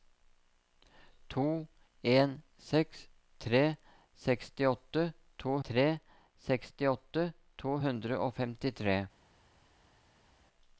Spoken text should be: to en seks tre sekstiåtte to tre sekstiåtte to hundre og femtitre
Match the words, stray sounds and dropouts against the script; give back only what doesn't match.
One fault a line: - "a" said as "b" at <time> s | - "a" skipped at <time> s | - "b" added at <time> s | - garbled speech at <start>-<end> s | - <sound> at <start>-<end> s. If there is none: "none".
none